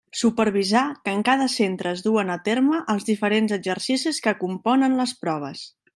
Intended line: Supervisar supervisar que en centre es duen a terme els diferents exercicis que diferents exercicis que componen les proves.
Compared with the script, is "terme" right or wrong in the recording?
right